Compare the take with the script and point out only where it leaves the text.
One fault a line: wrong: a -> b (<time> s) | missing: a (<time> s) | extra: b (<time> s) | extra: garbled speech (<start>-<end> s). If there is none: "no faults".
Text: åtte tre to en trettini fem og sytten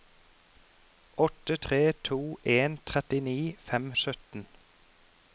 no faults